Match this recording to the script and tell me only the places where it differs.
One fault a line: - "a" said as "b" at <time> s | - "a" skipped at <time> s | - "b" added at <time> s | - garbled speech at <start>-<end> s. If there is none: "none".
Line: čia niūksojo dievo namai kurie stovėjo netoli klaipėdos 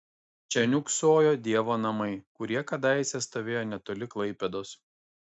- "kadaise" added at 2.7 s